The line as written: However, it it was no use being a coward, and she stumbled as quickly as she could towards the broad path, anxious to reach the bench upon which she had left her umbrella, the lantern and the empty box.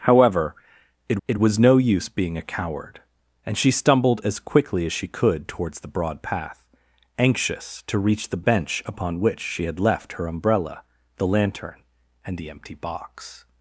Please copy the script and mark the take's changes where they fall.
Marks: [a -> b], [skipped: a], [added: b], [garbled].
However, it it was no use being a coward, and she stumbled as quickly as she could towards the broad path, anxious to reach the bench upon which she had left her umbrella, the lantern and the empty box.